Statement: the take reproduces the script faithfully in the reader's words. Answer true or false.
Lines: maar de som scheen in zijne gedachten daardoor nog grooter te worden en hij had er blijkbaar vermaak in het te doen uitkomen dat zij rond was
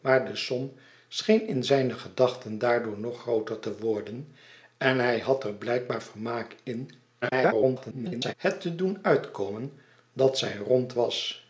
false